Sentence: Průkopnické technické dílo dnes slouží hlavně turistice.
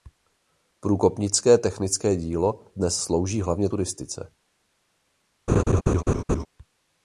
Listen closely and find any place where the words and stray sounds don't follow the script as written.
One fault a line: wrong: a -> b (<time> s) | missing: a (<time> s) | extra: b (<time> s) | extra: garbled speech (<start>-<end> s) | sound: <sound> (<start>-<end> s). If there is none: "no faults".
sound: laugh (5.5-6.5 s)